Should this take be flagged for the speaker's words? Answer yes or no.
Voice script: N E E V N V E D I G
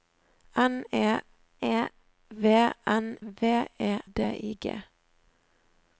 no